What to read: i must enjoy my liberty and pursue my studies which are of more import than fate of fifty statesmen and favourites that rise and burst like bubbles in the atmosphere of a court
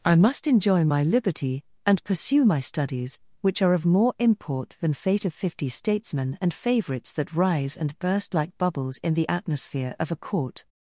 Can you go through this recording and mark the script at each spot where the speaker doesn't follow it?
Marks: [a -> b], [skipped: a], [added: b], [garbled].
i must enjoy my liberty and pursue my studies which are of more import than fate of fifty statesmen and favourites that rise and burst like bubbles in the atmosphere of a court